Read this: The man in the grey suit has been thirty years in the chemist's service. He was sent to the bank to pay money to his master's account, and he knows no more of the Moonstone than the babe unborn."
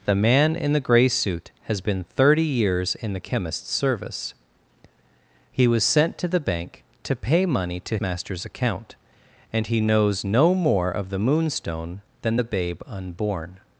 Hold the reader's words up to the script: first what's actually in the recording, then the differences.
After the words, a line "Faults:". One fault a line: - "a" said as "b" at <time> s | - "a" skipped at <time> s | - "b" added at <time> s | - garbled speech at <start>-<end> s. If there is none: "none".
The man in the grey suit has been thirty years in the chemist's service. He was sent to the bank to pay money to master's account, and he knows no more of the Moonstone than the babe unborn."
Faults:
- "his" skipped at 8.0 s